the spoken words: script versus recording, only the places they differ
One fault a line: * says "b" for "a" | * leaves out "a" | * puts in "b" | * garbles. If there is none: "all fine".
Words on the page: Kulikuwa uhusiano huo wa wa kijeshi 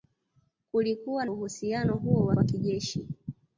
all fine